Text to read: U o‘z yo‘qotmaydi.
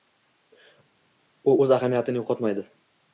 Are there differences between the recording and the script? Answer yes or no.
yes